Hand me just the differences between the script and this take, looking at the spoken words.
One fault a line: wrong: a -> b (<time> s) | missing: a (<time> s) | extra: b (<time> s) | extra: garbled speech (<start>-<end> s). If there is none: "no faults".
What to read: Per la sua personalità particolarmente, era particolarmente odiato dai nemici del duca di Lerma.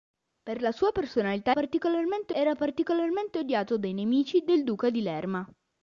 no faults